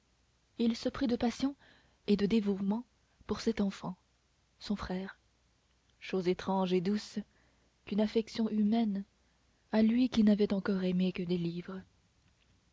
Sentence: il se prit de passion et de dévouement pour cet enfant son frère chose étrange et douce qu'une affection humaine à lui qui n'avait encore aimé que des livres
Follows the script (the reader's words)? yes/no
yes